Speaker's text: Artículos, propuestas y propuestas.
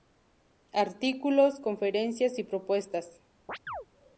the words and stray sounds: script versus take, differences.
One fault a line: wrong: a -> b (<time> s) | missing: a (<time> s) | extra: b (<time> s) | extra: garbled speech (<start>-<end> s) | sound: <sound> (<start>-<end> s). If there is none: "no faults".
wrong: propuestas -> conferencias (1.6 s)
sound: chirp (3.5-3.9 s)